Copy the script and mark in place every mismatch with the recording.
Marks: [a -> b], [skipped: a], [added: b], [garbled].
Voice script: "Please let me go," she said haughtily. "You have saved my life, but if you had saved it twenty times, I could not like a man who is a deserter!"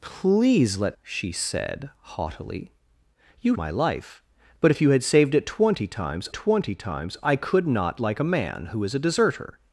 "Please let [skipped: me go,"] she said haughtily. "You [skipped: have saved] my life, but if you had saved it twenty times, [added: twenty times] I could not like a man who is a deserter!"